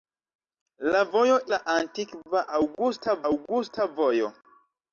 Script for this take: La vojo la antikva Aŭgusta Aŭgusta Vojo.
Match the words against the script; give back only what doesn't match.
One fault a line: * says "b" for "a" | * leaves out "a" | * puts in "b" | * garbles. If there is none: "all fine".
all fine